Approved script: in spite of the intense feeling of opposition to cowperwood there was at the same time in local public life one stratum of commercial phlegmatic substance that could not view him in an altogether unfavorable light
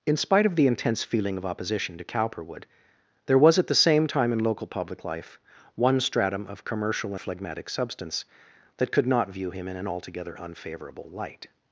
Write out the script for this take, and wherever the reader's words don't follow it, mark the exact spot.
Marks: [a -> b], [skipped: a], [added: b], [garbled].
in spite of the intense feeling of opposition to cowperwood there was at the same time in local public life one stratum of commercial phlegmatic substance that could not view him in an altogether unfavorable light